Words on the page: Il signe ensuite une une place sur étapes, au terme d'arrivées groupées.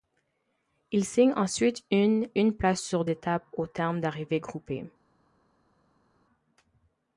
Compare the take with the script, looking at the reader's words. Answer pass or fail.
pass